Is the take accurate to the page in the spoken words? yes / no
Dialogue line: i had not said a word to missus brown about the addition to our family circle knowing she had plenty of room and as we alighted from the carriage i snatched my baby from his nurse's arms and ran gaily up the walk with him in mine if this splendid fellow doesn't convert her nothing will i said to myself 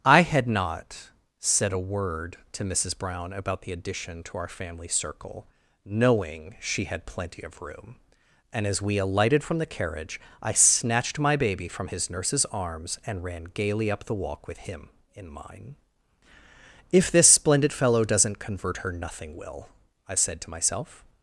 yes